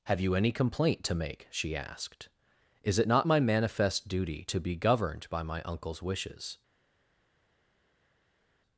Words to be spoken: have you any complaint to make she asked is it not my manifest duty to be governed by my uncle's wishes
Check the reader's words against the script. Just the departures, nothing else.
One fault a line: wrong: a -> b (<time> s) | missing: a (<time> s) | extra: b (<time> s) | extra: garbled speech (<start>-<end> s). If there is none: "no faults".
no faults